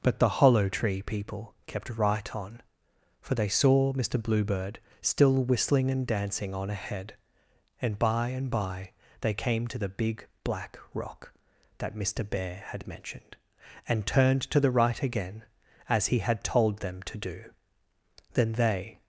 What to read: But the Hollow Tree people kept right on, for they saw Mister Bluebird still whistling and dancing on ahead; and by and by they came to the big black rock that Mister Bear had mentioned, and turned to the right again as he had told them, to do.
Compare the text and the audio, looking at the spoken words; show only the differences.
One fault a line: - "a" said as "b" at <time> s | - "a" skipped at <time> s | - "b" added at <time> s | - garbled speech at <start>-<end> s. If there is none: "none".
- "Then they" added at 18.3 s